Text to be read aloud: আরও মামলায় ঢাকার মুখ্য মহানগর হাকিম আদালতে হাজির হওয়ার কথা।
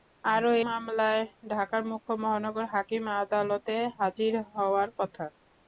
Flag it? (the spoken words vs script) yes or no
no